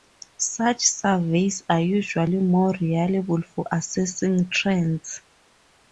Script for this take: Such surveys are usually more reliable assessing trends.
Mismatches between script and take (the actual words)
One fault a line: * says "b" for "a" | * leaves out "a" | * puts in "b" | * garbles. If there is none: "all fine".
* puts in "for"